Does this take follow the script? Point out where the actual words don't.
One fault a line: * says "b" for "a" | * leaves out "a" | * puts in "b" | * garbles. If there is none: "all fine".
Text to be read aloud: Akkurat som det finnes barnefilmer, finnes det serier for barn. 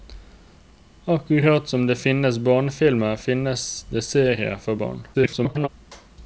* garbles